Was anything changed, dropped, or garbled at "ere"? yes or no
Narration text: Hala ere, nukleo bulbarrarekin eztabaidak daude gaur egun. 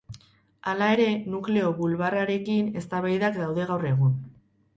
no